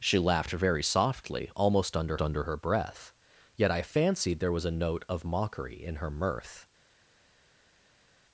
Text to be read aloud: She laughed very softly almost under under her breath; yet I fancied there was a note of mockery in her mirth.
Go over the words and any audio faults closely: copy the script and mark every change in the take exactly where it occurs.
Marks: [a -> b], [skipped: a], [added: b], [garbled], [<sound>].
She laughed very softly almost under under her breath; yet I fancied there was a note of mockery in her mirth.